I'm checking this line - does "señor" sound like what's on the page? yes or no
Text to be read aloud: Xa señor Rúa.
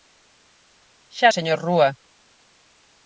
yes